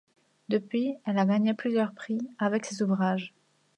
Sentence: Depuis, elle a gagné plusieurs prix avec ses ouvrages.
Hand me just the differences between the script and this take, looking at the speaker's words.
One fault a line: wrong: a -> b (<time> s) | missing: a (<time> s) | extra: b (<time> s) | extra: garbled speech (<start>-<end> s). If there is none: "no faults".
no faults